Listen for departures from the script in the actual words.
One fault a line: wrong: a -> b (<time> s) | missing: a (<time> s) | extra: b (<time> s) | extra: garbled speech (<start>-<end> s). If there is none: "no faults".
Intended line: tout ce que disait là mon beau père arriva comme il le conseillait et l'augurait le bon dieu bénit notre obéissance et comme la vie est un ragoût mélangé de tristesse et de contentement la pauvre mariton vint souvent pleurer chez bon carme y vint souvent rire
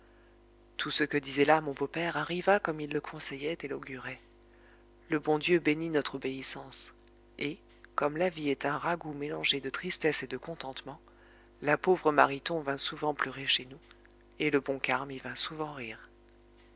extra: nous et le (13.6 s)